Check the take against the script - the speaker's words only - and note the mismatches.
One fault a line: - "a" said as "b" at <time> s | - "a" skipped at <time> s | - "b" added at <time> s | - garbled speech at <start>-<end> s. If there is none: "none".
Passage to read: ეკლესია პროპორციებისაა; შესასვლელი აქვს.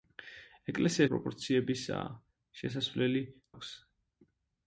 none